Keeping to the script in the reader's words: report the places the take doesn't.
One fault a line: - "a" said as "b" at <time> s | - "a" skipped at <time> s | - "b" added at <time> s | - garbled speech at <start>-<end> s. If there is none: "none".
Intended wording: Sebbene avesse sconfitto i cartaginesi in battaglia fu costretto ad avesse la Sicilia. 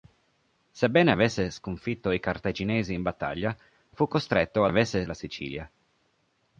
none